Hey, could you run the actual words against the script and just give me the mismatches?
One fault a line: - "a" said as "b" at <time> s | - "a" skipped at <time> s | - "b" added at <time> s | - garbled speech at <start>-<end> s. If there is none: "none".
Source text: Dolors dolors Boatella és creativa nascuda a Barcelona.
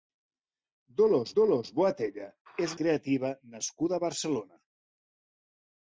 none